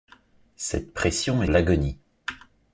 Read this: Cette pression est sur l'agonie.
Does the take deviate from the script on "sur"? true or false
true